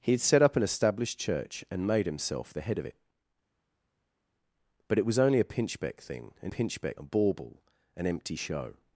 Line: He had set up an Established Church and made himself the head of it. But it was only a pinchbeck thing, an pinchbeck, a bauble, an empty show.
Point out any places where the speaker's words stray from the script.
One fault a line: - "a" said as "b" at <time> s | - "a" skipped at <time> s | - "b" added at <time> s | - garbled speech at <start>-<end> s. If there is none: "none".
none